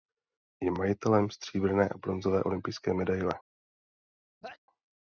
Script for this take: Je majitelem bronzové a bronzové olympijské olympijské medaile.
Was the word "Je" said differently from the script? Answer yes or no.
no